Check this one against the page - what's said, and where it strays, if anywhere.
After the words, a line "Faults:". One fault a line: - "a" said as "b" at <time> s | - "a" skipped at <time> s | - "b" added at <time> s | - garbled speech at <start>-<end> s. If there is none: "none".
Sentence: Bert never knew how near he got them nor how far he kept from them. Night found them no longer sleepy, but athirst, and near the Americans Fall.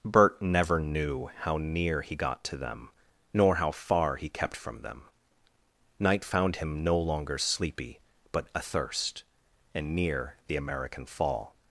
Bert never knew how near he got to them nor how far he kept from them. Night found him no longer sleepy, but athirst, and near the American Fall.
Faults:
- "to" added at 2.5 s
- "them" said as "him" at 6.6 s
- "Americans" said as "American" at 10.6 s